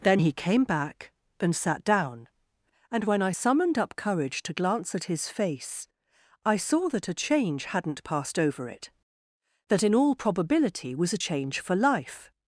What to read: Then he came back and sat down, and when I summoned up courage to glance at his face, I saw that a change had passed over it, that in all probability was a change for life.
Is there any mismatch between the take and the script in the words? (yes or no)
yes